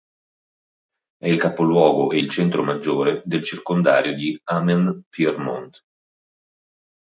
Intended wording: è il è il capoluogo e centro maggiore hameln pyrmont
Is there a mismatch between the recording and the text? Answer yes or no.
yes